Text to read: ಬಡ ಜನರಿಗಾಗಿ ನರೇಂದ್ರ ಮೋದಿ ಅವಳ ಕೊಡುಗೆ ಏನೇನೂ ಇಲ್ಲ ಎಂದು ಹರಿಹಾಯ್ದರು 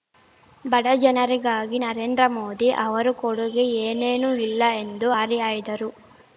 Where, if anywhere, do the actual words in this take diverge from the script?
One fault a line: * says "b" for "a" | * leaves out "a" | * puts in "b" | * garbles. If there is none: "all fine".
* says "ಅವರ" for "ಅವಳ"